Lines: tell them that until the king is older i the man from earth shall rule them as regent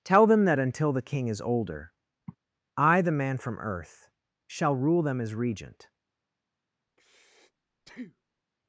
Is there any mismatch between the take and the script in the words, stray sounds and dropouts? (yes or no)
yes